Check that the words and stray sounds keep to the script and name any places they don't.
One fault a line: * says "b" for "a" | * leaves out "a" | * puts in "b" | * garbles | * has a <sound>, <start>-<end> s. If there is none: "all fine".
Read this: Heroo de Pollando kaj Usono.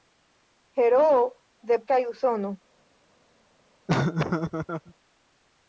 * leaves out "Pollando"
* has a laugh, 3.9-4.9 s